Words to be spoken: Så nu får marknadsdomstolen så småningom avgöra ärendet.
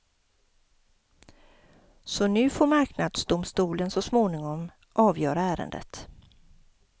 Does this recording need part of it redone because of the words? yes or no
no